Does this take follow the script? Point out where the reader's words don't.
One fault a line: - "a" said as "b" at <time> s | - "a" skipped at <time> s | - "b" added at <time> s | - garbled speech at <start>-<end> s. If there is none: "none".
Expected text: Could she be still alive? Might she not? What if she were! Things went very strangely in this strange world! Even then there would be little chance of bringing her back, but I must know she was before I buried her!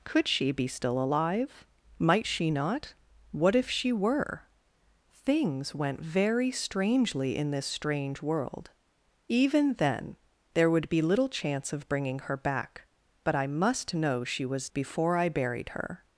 none